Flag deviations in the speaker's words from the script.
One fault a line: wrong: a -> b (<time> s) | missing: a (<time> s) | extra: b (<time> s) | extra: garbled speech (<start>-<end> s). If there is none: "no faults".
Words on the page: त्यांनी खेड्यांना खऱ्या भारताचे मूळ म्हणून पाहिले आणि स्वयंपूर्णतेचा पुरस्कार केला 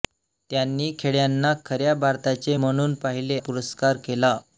missing: मूळ (2.5 s)
missing: आणि स्वयंपूर्णतेचा (3.4 s)